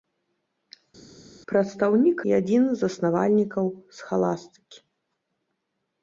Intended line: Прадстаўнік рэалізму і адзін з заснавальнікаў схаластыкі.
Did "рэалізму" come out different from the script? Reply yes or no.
yes